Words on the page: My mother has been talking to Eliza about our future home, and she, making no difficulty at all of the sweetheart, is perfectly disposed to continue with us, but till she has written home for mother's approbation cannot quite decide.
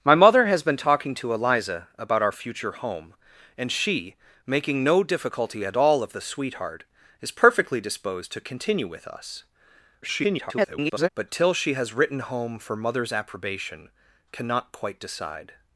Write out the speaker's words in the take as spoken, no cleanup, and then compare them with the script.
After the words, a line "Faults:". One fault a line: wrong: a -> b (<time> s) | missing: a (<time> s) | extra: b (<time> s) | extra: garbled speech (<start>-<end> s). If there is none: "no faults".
My mother has been talking to Eliza about our future home, and she, making no difficulty at all of the sweetheart, is perfectly disposed to continue with us, [garbled] but till she has written home for mother's approbation cannot quite decide.
Faults:
extra: garbled speech (10.0-11.1 s)